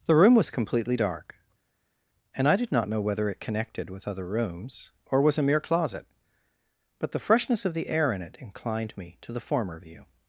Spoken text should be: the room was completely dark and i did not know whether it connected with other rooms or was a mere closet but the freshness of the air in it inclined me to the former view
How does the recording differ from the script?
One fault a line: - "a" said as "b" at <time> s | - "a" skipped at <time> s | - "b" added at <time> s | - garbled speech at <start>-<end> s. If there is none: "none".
none